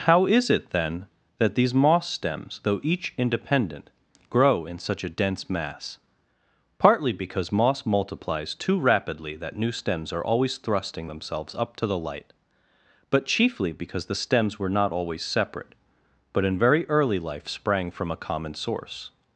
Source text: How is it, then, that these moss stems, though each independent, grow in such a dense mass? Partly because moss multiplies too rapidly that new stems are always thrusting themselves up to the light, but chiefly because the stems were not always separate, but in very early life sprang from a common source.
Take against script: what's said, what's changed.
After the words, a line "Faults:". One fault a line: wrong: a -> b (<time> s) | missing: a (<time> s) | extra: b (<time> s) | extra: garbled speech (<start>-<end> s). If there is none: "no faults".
How is it, then, that these moss stems, though each independent, grow in such a dense mass? Partly because moss multiplies too rapidly that new stems are always thrusting themselves up to the light, but chiefly because the stems were not always separate, but in very early life sprang from a common source.
Faults:
no faults